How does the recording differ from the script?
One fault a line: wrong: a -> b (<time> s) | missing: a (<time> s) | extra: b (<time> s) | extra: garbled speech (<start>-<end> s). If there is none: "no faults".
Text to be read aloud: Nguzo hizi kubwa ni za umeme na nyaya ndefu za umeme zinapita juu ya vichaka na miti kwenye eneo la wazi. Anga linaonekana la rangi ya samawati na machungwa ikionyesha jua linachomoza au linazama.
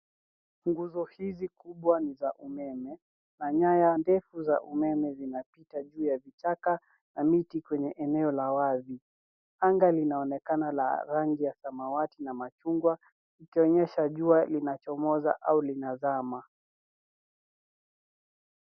no faults